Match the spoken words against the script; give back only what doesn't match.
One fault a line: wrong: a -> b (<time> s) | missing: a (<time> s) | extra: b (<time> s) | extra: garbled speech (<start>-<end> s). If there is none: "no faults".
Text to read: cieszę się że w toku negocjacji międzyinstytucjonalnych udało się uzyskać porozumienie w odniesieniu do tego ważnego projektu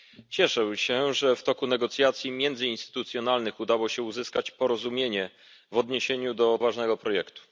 missing: tego (6.6 s)